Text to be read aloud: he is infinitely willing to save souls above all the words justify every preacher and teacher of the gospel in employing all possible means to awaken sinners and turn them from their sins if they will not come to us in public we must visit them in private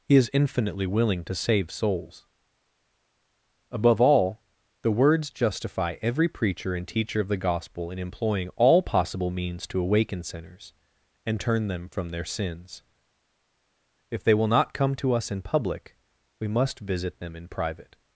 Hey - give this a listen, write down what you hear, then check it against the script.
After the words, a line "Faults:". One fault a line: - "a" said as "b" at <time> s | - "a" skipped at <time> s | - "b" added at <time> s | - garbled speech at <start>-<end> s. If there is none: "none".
he is infinitely willing to save souls above all the words justify every preacher and teacher of the gospel in employing all possible means to awaken sinners and turn them from their sins if they will not come to us in public we must visit them in private
Faults:
none